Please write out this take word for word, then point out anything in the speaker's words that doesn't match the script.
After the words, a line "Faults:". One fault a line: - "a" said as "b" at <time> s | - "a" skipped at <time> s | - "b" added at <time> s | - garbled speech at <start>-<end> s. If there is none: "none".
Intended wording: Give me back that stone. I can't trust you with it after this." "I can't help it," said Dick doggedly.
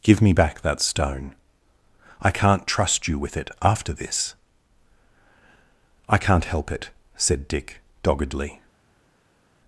Give me back that stone. I can't trust you with it after this." "I can't help it," said Dick doggedly.
Faults:
none